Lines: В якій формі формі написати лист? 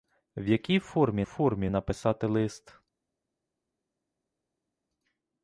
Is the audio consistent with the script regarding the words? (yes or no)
yes